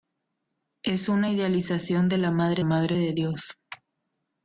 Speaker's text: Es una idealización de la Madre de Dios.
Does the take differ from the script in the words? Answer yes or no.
yes